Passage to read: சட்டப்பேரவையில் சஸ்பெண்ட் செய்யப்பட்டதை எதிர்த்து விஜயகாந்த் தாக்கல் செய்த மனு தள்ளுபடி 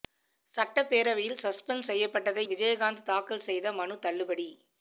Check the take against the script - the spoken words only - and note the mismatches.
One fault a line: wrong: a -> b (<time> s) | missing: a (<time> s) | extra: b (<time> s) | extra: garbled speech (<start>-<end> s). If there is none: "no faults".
missing: எதிர்த்து (2.5 s)